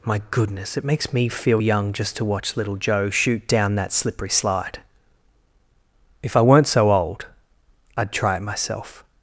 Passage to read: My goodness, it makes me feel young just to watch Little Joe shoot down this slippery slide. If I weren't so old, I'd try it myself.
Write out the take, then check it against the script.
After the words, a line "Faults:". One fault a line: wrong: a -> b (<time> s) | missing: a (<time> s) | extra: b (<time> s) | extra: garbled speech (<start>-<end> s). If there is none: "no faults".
My goodness, it makes me feel young just to watch Little Joe shoot down that slippery slide. If I weren't so old, I'd try it myself.
Faults:
wrong: this -> that (3.7 s)